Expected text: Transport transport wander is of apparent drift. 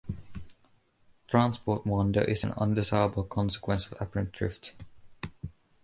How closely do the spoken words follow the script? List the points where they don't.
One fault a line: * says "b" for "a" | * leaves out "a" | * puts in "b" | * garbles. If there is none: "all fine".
* leaves out "transport"
* puts in "an undesirable consequence"